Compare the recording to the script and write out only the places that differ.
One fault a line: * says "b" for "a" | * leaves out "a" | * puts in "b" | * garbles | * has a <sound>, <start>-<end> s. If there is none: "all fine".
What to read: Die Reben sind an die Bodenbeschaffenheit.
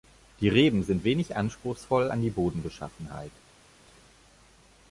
* puts in "wenig anspruchsvoll"